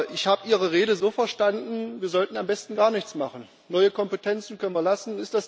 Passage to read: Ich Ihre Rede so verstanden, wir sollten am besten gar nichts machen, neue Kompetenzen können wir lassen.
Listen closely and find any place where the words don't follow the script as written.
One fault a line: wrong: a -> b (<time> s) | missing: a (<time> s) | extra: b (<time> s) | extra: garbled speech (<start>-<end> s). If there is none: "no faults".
extra: habe (0.3 s)